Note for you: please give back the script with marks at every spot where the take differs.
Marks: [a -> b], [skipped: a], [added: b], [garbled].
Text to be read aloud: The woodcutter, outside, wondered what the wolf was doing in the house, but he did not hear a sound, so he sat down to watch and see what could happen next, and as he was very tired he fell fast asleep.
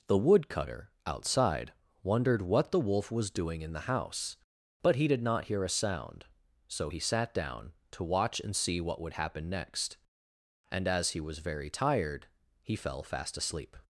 The woodcutter, outside, wondered what the wolf was doing in the house, but he did not hear a sound, so he sat down to watch and see what [could -> would] happen next, and as he was very tired he fell fast asleep.